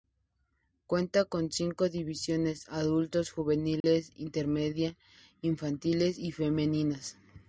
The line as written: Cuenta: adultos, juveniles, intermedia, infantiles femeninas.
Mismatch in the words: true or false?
true